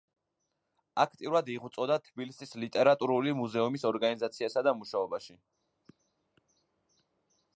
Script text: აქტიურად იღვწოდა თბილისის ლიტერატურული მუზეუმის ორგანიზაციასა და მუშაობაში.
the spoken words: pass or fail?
pass